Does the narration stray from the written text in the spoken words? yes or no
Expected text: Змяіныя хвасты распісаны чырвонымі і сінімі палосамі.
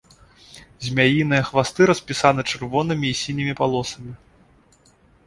no